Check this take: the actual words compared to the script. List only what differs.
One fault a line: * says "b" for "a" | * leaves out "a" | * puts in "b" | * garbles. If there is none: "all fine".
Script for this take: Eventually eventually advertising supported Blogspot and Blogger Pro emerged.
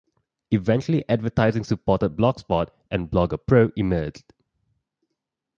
* leaves out "eventually"